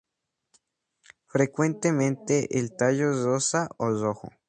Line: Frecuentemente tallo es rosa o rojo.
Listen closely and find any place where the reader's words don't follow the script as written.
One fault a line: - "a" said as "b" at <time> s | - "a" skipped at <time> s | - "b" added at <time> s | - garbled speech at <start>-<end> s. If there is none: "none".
- "el" added at 2.6 s